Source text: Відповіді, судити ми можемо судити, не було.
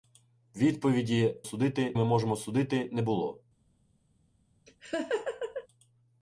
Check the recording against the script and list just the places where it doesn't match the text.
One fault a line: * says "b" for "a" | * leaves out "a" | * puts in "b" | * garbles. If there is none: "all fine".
all fine